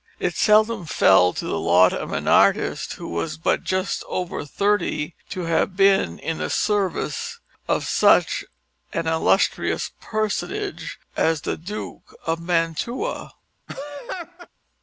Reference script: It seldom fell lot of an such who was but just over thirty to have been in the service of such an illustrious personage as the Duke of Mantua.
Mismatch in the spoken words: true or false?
true